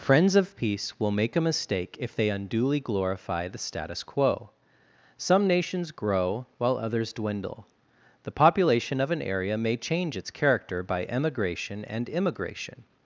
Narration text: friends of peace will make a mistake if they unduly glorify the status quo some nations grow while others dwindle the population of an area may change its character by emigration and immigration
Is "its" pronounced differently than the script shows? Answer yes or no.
no